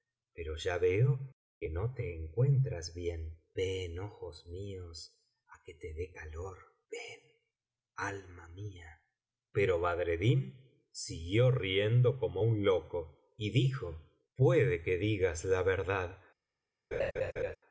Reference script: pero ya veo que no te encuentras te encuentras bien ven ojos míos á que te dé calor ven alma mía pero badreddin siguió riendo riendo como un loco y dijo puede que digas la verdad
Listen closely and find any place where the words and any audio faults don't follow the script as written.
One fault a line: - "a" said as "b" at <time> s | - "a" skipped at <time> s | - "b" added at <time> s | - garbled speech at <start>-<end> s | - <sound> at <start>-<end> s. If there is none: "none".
- "te encuentras" skipped at 3.0 s
- "riendo" skipped at 12.2 s
- laugh at 16.9-17.6 s